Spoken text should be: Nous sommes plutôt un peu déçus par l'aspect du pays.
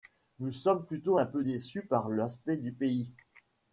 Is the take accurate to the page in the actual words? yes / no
yes